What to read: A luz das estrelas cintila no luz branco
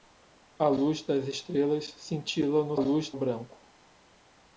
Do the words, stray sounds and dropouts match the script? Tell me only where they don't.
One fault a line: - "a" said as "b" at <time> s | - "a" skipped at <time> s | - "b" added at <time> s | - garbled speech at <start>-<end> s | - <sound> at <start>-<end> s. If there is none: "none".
none